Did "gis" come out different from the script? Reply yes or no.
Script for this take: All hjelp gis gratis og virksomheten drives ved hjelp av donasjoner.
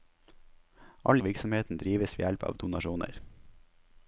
yes